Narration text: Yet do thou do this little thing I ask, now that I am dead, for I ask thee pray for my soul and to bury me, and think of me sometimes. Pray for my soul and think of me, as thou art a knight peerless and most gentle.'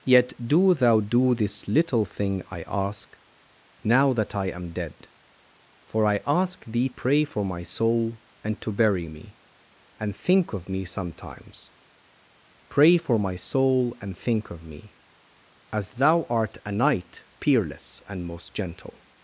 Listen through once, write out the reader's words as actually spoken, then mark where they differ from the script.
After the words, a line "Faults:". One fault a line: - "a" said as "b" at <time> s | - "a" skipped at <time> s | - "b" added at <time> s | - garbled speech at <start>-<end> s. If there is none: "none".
Yet do thou do this little thing I ask, now that I am dead, for I ask thee pray for my soul and to bury me, and think of me sometimes. Pray for my soul and think of me, as thou art a knight peerless and most gentle.'
Faults:
none